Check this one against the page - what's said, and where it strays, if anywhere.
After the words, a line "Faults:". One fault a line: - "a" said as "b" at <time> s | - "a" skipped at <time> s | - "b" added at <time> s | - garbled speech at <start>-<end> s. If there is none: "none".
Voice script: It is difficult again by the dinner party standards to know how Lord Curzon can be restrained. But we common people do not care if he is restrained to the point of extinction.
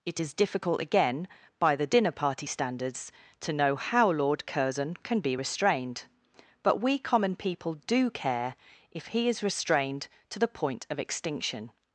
It is difficult again by the dinner party standards to know how Lord Curzon can be restrained. But we common people do care if he is restrained to the point of extinction.
Faults:
- "not" skipped at 8.1 s